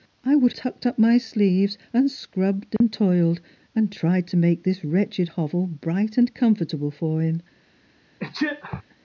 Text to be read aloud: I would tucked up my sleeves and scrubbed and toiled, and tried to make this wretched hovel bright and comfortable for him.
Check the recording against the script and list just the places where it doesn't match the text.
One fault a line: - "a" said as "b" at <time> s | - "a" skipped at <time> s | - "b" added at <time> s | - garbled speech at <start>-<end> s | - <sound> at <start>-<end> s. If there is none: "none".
- dropout at 2.8-2.8 s
- sneeze at 8.2-8.8 s